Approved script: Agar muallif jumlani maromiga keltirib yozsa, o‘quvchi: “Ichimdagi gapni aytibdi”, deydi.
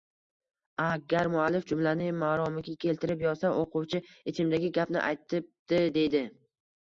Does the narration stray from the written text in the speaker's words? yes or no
no